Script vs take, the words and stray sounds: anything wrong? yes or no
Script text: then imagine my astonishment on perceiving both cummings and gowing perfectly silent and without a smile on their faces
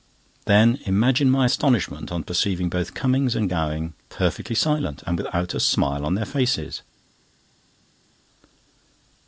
no